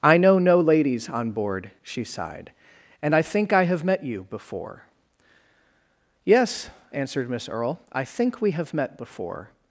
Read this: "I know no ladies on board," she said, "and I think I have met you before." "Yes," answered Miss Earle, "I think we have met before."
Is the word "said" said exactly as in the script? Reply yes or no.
no